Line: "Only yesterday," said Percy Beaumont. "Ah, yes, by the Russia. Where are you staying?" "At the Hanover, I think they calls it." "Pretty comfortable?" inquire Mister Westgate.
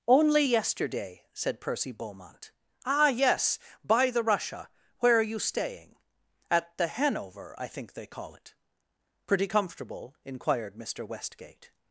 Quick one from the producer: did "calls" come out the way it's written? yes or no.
no